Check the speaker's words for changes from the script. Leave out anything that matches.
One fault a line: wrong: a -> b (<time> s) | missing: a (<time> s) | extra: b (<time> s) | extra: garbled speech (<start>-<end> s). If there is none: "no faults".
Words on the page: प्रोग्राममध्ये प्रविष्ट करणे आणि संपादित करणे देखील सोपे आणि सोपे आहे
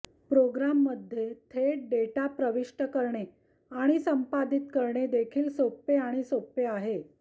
extra: थेट डेटा (1.5 s)